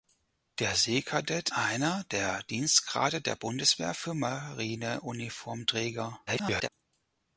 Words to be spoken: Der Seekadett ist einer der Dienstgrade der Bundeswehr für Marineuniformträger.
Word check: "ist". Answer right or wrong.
wrong